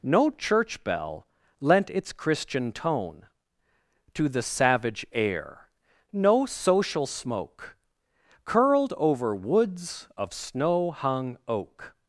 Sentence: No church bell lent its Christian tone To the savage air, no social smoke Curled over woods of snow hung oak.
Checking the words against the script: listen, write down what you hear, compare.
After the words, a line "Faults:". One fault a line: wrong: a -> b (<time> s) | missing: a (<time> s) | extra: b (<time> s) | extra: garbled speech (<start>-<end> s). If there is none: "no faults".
No church bell lent its Christian tone To the savage air, no social smoke Curled over woods of snow hung oak.
Faults:
no faults